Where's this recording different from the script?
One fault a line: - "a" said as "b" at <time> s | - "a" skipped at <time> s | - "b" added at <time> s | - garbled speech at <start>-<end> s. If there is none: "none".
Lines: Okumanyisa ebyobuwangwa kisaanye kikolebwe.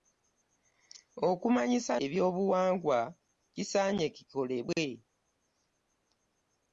none